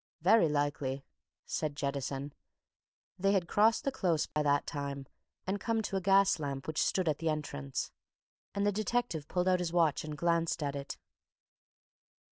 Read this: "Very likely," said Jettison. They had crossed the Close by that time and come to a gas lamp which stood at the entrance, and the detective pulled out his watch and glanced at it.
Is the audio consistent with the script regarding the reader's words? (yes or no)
yes